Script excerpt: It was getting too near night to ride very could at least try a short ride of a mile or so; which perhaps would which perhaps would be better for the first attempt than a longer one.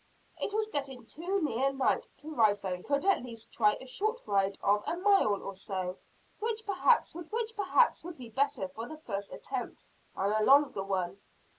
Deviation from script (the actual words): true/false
false